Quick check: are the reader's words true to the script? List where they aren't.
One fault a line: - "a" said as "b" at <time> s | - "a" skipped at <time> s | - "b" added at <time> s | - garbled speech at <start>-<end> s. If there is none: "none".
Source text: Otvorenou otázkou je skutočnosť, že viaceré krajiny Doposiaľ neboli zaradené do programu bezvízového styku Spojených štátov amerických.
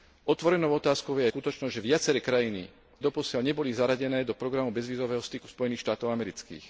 none